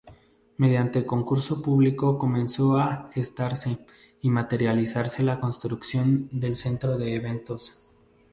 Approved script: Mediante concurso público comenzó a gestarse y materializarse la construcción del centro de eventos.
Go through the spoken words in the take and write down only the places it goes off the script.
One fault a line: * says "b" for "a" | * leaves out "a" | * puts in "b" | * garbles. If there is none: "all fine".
all fine